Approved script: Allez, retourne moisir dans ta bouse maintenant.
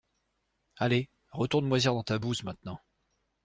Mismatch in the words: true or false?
false